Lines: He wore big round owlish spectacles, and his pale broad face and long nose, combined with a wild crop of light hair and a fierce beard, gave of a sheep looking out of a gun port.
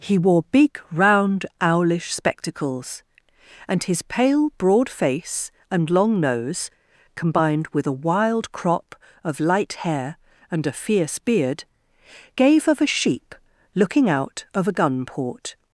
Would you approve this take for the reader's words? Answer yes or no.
yes